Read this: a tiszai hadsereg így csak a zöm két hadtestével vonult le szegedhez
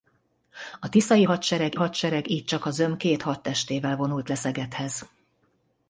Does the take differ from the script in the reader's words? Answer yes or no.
yes